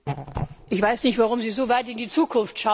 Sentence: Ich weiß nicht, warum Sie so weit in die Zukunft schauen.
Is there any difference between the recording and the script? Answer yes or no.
no